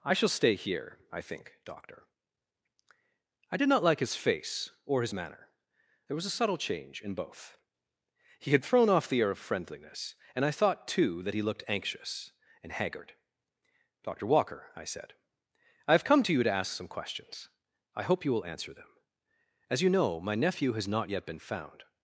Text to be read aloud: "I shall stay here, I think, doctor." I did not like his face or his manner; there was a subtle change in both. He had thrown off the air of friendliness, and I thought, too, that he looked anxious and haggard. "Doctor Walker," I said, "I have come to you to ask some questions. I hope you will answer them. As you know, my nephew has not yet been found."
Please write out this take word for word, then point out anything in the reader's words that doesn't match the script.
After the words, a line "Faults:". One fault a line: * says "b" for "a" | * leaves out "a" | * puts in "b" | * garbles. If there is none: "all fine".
"I shall stay here, I think, doctor." I did not like his face or his manner; there was a subtle change in both. He had thrown off the air of friendliness, and I thought, too, that he looked anxious and haggard. "Doctor Walker," I said, "I have come to you to ask some questions. I hope you will answer them. As you know, my nephew has not yet been found."
Faults:
all fine